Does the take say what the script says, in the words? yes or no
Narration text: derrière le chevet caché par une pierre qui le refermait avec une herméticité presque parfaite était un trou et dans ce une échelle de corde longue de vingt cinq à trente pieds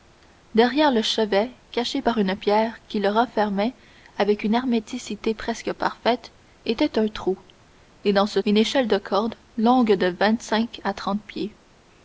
yes